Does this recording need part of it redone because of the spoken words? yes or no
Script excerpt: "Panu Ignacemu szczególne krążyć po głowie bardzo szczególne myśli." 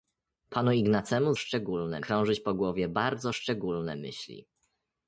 no